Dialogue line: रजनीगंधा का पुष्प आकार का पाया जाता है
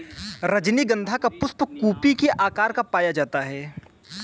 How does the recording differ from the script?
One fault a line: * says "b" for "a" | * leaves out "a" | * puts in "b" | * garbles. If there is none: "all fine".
* puts in "कुपी के"